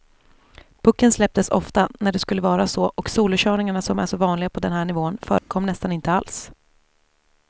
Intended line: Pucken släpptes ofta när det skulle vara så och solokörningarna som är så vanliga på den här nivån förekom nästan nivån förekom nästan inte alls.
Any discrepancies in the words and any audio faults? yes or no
yes